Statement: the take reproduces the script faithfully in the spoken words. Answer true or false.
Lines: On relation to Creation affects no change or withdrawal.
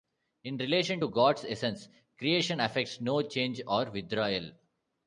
false